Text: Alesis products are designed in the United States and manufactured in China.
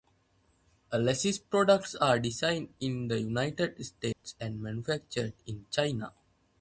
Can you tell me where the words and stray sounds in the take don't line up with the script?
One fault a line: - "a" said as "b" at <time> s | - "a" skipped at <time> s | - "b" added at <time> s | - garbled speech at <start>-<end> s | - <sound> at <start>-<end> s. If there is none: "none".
- dropout at 4.1-4.2 s